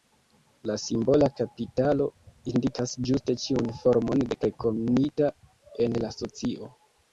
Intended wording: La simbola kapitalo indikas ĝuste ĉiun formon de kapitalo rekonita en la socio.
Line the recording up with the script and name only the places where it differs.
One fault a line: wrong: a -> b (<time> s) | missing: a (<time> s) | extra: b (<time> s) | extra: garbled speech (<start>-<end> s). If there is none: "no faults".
missing: kapitalo (4.4 s)